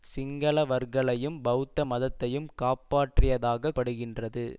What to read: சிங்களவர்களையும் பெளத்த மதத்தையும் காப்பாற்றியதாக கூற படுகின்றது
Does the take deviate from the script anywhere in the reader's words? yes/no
yes